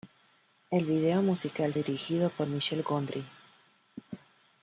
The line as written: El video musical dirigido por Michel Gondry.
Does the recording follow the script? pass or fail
pass